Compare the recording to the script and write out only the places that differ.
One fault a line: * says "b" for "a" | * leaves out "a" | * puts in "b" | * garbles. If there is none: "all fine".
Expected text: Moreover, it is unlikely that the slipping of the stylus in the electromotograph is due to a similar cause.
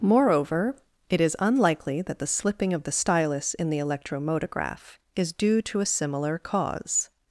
all fine